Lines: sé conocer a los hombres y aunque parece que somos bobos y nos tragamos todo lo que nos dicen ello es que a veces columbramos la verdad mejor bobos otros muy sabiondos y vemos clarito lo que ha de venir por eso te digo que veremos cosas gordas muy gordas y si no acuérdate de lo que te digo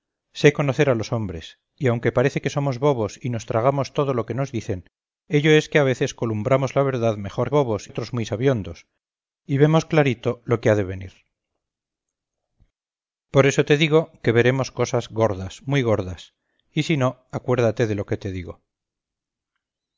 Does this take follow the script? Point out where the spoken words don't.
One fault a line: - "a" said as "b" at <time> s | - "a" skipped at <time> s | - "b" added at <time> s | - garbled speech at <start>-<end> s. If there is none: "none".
none